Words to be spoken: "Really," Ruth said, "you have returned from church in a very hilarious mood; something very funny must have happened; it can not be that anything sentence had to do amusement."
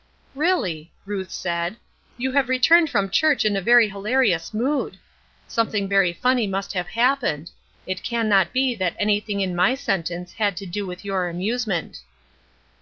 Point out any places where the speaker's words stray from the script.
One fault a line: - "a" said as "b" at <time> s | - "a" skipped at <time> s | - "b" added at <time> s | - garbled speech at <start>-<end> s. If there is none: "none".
- "in my" added at 9.4 s
- "with your" added at 10.8 s